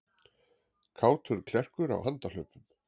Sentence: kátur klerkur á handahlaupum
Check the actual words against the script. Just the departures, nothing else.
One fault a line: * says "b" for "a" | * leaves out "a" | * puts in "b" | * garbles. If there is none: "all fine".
all fine